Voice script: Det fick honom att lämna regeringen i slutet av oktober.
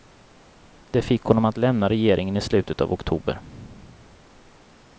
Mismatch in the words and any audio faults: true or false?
false